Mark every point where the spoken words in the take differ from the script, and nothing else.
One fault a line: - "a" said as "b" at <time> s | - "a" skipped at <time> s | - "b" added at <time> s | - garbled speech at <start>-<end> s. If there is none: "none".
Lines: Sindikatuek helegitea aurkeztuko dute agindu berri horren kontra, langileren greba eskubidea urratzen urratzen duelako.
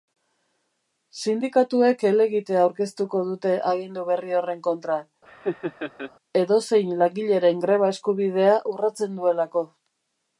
- "edozein" added at 6.4 s
- "urratzen" skipped at 9.2 s